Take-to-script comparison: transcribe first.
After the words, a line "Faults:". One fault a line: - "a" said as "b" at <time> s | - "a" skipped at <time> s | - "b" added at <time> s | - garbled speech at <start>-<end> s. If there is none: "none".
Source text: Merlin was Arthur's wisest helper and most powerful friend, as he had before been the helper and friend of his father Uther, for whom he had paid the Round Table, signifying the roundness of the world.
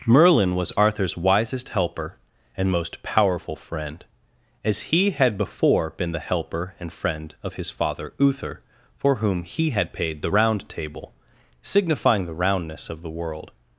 Merlin was Arthur's wisest helper and most powerful friend, as he had before been the helper and friend of his father Uther, for whom he had paid the Round Table, signifying the roundness of the world.
Faults:
none